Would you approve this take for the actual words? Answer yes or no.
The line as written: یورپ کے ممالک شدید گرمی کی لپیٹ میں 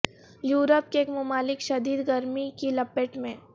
yes